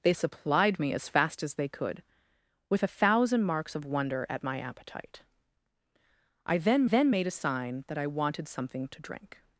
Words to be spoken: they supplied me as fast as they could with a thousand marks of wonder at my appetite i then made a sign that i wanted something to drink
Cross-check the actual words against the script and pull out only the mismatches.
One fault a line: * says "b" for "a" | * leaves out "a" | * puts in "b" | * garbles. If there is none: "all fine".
* puts in "then"